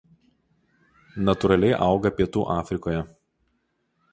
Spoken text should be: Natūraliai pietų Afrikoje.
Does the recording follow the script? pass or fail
fail